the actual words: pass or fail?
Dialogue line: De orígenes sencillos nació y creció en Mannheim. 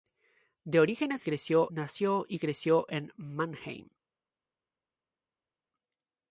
fail